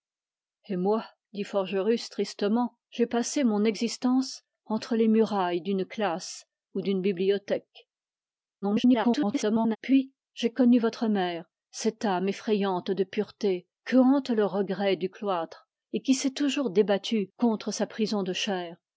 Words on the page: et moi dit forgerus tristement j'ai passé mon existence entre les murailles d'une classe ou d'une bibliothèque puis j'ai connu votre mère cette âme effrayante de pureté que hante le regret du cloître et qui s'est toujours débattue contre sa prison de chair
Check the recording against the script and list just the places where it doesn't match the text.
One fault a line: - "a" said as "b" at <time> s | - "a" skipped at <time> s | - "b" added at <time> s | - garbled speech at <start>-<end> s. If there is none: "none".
- garbled speech at 8.6-9.8 s